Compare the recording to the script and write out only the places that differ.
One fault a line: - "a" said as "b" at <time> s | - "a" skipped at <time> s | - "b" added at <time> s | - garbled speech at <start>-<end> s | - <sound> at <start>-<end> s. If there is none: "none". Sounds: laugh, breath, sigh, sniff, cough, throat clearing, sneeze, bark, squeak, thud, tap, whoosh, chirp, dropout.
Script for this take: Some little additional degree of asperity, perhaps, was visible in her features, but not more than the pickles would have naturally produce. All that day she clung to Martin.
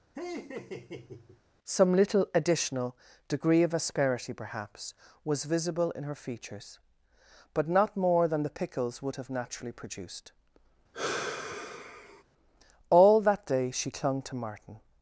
- laugh at 0.1-1.4 s
- "produce" said as "produced" at 9.7 s
- sigh at 10.9-12.2 s